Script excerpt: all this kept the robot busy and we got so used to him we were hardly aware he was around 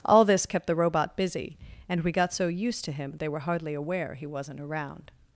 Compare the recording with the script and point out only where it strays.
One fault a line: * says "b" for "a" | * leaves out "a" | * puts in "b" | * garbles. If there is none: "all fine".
* says "they" for "we"
* says "wasn't" for "was"